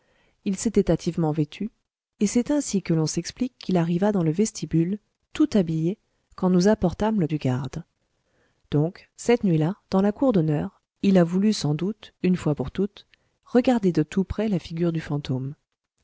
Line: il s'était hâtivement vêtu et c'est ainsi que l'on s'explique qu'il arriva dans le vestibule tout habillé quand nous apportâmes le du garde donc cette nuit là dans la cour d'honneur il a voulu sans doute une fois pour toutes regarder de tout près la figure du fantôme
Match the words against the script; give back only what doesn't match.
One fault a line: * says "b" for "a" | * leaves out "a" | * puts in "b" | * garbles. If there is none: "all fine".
all fine